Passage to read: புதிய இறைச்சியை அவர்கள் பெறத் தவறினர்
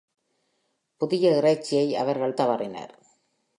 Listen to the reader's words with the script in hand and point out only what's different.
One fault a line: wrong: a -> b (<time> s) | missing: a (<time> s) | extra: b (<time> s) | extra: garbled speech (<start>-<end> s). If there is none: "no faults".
missing: பெறத் (2.4 s)